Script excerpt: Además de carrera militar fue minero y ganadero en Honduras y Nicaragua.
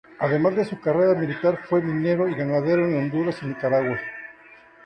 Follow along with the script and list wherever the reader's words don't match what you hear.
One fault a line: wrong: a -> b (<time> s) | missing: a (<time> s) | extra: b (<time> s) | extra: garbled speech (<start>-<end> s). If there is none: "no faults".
extra: su (0.7 s)